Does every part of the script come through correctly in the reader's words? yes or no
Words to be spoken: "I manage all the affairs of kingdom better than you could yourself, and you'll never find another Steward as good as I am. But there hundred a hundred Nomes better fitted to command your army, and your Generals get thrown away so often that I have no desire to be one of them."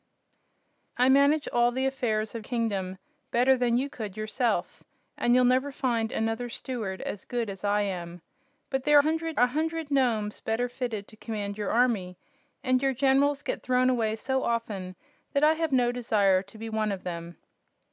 yes